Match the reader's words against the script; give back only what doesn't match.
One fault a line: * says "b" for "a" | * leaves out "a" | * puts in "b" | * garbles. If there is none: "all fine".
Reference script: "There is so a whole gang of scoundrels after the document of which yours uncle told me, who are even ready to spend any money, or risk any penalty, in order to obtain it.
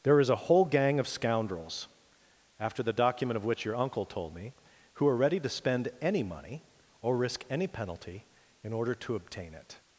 * leaves out "so"
* says "your" for "yours"
* leaves out "even"